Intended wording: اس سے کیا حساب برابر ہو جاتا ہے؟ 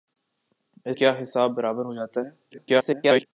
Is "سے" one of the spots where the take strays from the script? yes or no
yes